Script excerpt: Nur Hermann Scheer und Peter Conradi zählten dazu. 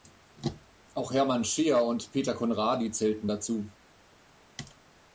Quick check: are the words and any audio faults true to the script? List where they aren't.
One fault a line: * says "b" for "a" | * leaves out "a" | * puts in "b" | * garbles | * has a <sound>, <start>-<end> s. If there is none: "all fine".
* says "Auch" for "Nur"